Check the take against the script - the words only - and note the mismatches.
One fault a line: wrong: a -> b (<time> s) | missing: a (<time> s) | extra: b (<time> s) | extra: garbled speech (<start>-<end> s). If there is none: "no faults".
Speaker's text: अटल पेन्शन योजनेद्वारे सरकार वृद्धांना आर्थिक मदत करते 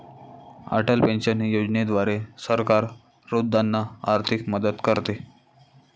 no faults